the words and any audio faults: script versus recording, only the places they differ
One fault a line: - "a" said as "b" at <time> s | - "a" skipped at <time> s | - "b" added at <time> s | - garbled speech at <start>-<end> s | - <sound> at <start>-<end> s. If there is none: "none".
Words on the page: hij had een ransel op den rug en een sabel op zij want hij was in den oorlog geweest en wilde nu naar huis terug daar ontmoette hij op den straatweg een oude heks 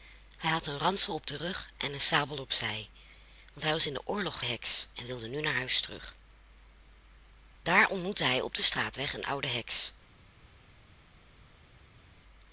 - "geweest" said as "heks" at 4.4 s